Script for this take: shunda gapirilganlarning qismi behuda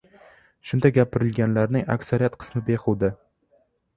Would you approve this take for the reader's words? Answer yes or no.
no